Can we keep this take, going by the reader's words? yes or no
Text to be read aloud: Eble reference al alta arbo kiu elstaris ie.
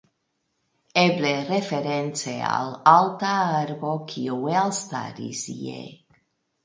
yes